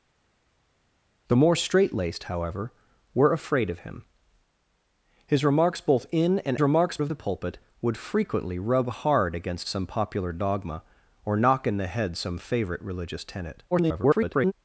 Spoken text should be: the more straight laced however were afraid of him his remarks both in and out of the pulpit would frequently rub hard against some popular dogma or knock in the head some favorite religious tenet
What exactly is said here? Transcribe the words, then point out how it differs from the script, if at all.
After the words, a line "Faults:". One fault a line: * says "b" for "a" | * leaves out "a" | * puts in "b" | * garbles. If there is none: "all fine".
the more straight laced however were afraid of him his remarks both in and remarks of the pulpit would frequently rub hard against some popular dogma or knock in the head some favorite religious tenet [garbled]
Faults:
* says "remarks" for "out"
* garbles